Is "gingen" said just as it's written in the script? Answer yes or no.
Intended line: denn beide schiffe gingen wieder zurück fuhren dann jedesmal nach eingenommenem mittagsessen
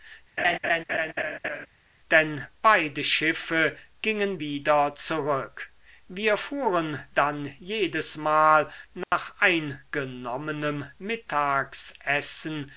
yes